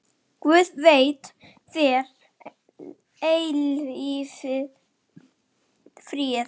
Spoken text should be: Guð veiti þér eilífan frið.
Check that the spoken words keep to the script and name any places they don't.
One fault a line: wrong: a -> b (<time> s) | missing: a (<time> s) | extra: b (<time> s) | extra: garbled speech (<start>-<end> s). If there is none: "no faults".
no faults